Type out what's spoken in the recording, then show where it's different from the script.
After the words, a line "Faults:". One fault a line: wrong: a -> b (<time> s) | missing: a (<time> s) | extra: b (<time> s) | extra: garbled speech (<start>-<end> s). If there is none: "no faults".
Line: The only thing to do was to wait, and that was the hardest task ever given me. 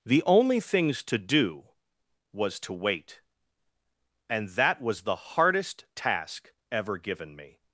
The only things to do was to wait, and that was the hardest task ever given me.
Faults:
wrong: thing -> things (0.6 s)